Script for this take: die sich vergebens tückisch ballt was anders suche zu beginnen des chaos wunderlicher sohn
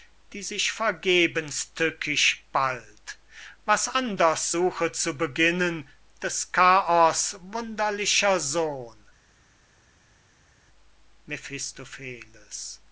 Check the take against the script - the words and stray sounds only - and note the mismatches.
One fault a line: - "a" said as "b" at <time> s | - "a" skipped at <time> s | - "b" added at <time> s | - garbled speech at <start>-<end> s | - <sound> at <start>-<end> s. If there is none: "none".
none